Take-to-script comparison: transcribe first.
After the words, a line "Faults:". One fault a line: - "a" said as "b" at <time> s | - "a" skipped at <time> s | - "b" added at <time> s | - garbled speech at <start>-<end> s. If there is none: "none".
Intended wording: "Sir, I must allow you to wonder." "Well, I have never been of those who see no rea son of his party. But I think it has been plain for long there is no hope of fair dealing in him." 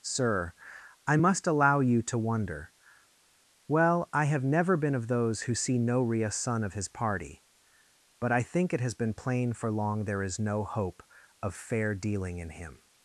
"Sir, I must allow you to wonder." "Well, I have never been of those who see no rea son of his party. But I think it has been plain for long there is no hope of fair dealing in him."
Faults:
none